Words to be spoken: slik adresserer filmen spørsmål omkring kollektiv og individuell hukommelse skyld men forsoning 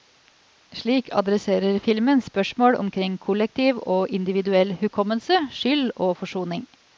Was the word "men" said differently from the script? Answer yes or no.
yes